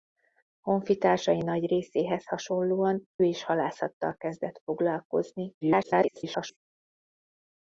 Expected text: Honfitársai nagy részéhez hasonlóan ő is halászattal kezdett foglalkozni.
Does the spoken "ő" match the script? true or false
false